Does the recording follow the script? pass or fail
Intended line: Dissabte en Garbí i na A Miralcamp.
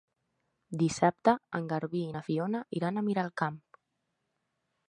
fail